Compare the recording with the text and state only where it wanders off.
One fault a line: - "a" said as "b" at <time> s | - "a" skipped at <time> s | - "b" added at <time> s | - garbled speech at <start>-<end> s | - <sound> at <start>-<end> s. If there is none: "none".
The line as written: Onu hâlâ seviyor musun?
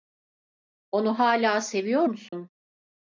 - dropout at 2.3-2.3 s